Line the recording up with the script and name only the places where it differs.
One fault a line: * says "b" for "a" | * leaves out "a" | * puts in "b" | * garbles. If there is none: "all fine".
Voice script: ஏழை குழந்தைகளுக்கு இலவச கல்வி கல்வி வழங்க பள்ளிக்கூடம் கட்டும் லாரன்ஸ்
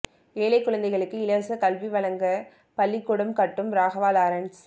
* leaves out "கல்வி"
* puts in "ராகவா"